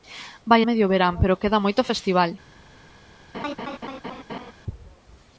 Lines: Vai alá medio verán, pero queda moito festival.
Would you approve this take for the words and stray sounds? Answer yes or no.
no